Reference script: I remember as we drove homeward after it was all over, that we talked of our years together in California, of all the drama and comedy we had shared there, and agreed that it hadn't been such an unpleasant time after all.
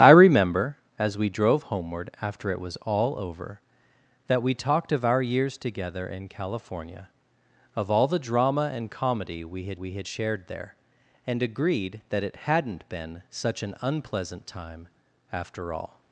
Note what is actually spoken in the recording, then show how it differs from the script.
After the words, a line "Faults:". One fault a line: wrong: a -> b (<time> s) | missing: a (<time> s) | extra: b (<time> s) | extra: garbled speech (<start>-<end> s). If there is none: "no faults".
I remember as we drove homeward after it was all over, that we talked of our years together in California, of all the drama and comedy we had we had shared there, and agreed that it hadn't been such an unpleasant time after all.
Faults:
extra: we had (9.7 s)